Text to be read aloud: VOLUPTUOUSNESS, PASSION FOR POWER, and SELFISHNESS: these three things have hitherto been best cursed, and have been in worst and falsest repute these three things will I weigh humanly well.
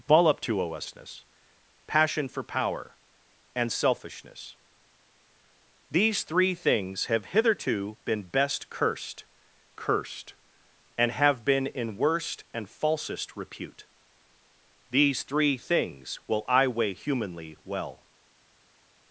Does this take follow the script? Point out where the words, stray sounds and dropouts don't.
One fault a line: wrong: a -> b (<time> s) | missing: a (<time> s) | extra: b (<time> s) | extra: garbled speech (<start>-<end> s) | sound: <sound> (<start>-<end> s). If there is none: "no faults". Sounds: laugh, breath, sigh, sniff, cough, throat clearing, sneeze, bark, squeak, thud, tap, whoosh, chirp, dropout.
extra: cursed (9.8 s)